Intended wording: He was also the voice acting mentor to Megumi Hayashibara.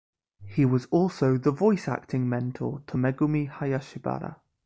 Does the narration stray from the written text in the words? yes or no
no